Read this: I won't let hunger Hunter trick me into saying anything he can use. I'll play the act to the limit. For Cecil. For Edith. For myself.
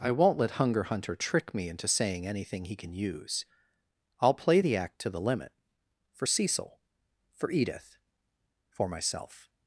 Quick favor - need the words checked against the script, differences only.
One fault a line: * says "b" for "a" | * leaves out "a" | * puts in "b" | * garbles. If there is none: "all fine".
all fine